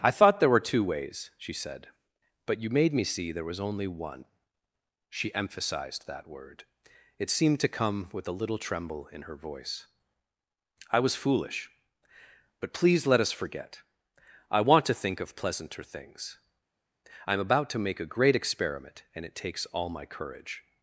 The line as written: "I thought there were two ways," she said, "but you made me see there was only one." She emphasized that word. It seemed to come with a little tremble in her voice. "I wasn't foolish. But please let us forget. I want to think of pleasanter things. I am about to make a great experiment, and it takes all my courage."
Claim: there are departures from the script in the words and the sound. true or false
true